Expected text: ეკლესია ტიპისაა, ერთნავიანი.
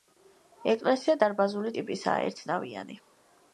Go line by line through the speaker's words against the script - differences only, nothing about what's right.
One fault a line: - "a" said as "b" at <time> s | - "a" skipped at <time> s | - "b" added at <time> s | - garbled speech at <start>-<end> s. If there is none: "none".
- "დარბაზული" added at 1.2 s